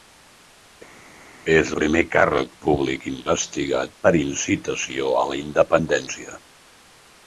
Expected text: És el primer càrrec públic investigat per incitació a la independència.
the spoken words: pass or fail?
fail